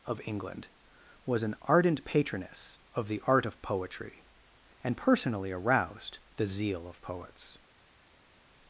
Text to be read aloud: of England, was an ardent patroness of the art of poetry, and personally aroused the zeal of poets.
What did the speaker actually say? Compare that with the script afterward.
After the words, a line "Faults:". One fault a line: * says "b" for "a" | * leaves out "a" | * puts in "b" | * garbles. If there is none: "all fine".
of England, was an ardent patroness of the art of poetry, and personally aroused the zeal of poets.
Faults:
all fine